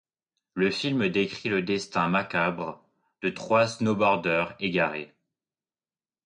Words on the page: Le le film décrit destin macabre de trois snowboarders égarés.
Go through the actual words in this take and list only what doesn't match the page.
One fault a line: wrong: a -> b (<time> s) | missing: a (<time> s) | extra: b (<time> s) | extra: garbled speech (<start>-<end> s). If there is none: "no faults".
missing: le (0.7 s)
extra: le (1.5 s)